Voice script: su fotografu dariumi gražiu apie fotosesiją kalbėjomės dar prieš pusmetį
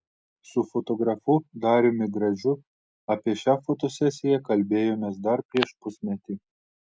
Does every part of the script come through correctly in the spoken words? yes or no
no